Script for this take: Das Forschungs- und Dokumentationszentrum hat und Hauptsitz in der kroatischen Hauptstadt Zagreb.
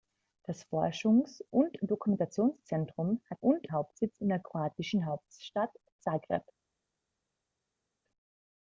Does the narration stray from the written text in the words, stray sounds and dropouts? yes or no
no